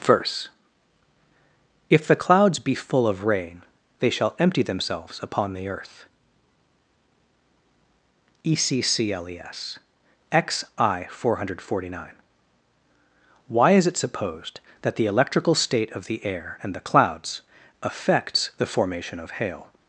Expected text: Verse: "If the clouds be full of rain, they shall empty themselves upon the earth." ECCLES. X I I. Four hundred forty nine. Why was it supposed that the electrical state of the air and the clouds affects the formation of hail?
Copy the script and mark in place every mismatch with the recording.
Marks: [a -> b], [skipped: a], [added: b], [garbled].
Verse: "If the clouds be full of rain, they shall empty themselves upon the earth." ECCLES. X I [skipped: I.] Four hundred forty nine. Why [was -> is] it supposed that the electrical state of the air and the clouds affects the formation of hail?